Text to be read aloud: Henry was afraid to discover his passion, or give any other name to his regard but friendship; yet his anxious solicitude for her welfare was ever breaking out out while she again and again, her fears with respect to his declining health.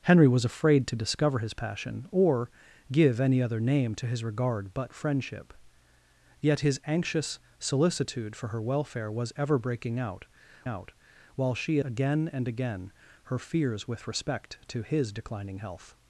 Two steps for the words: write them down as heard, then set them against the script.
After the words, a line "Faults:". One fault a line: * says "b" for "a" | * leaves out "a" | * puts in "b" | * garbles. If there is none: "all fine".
Henry was afraid to discover his passion, or give any other name to his regard but friendship; yet his anxious solicitude for her welfare was ever breaking out out while she again and again, her fears with respect to his declining health.
Faults:
all fine